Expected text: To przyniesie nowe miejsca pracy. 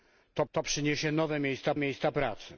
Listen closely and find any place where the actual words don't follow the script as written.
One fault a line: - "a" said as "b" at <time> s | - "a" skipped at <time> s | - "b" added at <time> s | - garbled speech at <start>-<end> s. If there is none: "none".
- "to" added at 0.5 s
- "miejsca" added at 1.8 s